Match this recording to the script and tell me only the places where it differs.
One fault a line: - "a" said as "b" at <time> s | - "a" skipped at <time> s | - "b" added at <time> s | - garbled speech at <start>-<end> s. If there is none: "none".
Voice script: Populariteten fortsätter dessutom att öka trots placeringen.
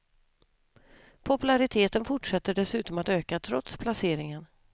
none